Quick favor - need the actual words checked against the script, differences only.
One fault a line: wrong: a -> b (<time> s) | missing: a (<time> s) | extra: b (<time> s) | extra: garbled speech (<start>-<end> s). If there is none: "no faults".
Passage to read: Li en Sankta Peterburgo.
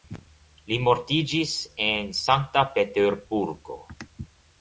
extra: mortiĝis (0.8 s)